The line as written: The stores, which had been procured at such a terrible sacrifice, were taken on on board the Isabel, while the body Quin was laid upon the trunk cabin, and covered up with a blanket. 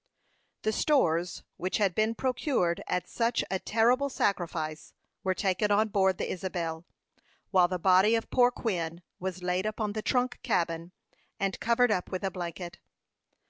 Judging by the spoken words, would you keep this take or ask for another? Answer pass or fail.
fail